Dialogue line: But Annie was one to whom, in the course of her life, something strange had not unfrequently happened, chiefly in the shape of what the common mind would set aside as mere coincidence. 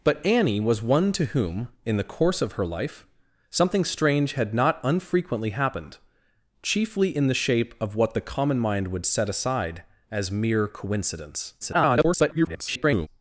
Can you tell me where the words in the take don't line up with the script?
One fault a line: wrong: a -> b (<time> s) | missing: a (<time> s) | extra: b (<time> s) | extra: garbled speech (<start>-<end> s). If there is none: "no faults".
extra: garbled speech (11.6-13.1 s)